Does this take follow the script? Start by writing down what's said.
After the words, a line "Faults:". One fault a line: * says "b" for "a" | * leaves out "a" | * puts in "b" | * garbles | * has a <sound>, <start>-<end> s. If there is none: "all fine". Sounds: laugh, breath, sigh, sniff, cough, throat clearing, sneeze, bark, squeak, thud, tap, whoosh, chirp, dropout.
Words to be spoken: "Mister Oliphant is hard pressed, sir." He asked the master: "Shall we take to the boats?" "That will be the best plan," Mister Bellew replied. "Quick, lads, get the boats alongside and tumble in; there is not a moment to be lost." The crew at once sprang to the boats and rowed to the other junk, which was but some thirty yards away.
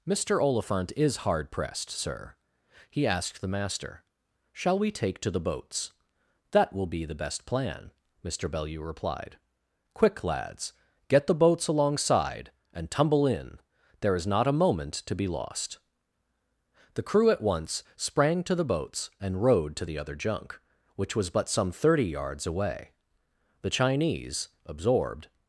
"Mister Oliphant is hard pressed, sir." He asked the master: "Shall we take to the boats?" "That will be the best plan," Mister Bellew replied. "Quick, lads, get the boats alongside and tumble in; there is not a moment to be lost." The crew at once sprang to the boats and rowed to the other junk, which was but some thirty yards away. The Chinese, absorbed
Faults:
* puts in "The Chinese absorbed"